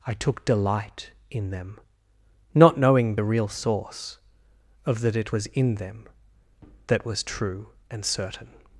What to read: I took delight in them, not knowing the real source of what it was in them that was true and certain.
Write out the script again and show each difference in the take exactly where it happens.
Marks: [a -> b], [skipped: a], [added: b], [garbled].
I took delight in them, not knowing the real source of [what -> that] it was in them that was true and certain.